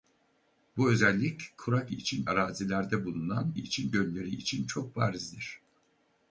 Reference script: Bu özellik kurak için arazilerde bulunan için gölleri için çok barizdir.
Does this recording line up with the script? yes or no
yes